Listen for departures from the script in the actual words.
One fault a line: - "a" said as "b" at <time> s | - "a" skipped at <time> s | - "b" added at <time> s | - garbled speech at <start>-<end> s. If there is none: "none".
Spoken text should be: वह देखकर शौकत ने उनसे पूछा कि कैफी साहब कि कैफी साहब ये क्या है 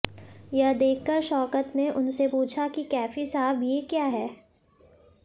- "वह" said as "यह" at 0.5 s
- "कि कैफी साहब" skipped at 3.6 s